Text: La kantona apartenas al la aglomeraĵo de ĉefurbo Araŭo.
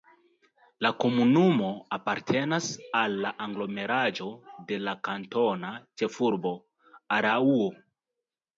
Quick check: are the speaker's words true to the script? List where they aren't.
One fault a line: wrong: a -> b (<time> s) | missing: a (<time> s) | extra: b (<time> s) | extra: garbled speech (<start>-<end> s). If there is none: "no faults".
wrong: kantona -> komunumo (1.0 s)
extra: la kantona (4.9 s)